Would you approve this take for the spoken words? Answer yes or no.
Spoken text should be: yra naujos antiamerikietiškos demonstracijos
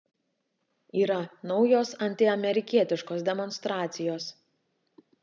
yes